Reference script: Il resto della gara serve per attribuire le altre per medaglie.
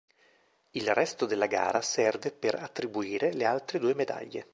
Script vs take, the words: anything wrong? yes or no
yes